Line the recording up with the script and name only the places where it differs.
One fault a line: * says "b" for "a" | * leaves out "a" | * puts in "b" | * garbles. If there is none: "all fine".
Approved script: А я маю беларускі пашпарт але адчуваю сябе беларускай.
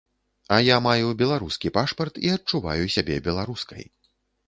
* says "і" for "але"